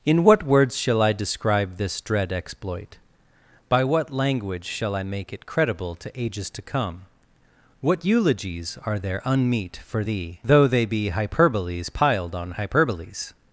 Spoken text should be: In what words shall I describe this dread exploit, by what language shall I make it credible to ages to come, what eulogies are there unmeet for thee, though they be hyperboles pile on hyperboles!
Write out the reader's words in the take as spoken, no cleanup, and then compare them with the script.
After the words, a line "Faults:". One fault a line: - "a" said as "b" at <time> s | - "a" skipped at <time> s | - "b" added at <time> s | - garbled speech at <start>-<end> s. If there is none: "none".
In what words shall I describe this dread exploit, by what language shall I make it credible to ages to come, what eulogies are there unmeet for thee, though they be hyperboles piled on hyperboles!
Faults:
- "pile" said as "piled" at 11.9 s